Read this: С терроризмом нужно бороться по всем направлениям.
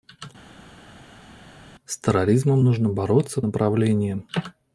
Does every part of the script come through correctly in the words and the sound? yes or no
no